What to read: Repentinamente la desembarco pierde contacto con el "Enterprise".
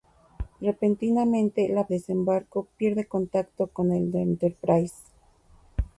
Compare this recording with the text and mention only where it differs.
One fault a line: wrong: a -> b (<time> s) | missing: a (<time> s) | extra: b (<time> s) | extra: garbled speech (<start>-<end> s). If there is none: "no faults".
no faults